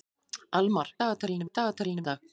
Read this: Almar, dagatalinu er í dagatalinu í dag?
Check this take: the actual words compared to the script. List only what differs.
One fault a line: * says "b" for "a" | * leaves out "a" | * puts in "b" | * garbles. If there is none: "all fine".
all fine